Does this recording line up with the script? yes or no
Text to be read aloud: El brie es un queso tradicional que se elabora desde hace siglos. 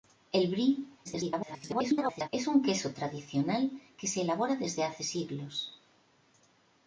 no